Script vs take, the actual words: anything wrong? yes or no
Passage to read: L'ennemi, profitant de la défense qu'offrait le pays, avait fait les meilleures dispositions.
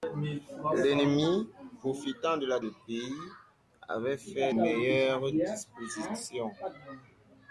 yes